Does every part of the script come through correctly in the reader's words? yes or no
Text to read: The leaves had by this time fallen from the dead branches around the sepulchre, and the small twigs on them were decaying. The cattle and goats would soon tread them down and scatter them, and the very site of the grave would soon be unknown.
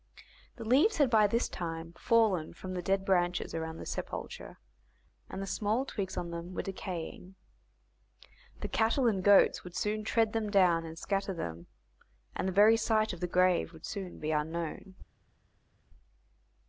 yes